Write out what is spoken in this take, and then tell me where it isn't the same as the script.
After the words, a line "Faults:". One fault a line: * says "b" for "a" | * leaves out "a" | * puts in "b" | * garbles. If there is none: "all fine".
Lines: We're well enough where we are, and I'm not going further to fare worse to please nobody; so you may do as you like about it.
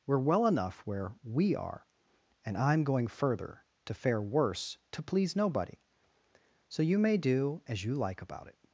We're well enough where we are, and I'm going further to fare worse to please nobody; so you may do as you like about it.
Faults:
* leaves out "not"